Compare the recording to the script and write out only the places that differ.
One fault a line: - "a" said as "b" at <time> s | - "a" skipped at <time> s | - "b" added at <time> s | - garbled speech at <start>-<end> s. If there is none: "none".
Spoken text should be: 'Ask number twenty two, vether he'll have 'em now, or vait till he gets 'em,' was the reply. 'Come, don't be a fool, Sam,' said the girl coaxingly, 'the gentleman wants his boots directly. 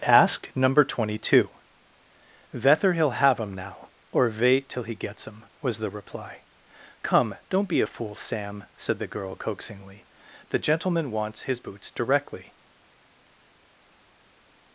none